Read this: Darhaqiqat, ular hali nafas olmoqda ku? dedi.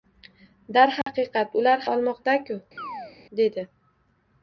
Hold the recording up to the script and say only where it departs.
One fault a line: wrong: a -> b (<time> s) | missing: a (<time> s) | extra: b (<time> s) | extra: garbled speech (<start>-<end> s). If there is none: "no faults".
missing: hali nafas (1.8 s)